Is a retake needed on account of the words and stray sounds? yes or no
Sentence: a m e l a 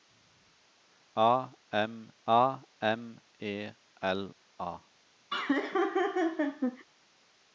yes